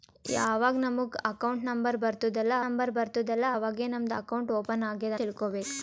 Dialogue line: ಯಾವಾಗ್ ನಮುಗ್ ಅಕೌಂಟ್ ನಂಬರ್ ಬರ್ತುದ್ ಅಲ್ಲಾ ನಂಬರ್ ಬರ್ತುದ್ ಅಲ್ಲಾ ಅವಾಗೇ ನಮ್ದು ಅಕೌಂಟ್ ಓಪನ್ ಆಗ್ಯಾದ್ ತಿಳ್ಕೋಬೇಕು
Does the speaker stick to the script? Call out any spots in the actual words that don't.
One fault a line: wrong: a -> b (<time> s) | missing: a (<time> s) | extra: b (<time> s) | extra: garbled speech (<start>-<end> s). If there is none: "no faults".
no faults